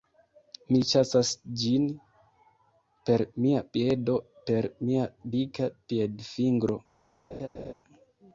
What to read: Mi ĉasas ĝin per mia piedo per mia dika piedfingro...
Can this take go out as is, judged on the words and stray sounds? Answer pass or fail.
fail